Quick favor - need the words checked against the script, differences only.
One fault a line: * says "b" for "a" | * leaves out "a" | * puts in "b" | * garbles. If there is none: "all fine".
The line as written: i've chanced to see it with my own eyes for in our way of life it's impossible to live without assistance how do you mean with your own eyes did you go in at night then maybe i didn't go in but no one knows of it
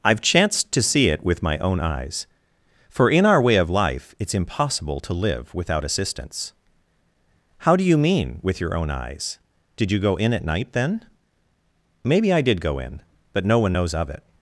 * says "did" for "didn't"